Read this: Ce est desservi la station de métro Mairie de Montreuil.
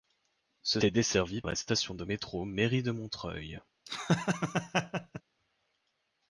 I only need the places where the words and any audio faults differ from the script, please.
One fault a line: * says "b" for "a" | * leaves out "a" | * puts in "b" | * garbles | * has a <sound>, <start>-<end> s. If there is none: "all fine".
* has a laugh, 3.9-5.2 s